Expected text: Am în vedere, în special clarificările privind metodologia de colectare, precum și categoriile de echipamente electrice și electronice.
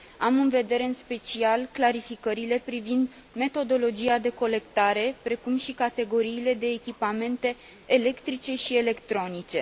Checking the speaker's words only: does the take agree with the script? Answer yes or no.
yes